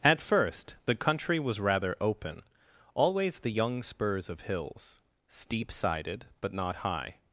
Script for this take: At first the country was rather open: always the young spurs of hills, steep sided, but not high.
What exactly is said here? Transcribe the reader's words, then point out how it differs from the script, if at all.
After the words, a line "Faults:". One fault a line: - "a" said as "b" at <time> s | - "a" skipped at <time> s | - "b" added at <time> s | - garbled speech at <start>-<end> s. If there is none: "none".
At first the country was rather open: always the young spurs of hills, steep sided, but not high.
Faults:
none